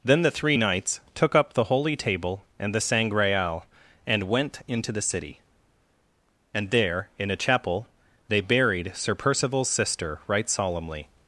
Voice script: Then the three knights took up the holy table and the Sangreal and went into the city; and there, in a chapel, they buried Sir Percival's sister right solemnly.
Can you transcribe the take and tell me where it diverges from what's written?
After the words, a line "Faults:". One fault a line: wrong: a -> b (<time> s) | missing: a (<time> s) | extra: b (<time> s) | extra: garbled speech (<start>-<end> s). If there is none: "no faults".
Then the three knights took up the holy table and the Sangreal and went into the city; and there, in a chapel, they buried Sir Percival's sister right solemnly.
Faults:
no faults